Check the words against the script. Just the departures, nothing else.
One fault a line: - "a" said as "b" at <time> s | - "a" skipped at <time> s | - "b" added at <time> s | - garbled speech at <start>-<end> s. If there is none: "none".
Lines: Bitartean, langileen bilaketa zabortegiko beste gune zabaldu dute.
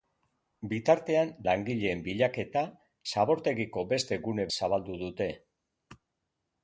none